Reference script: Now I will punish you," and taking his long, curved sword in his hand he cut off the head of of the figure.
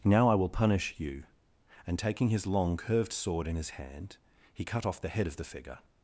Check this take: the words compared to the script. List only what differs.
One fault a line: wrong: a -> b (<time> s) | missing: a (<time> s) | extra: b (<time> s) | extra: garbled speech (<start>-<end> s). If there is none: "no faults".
missing: of (5.4 s)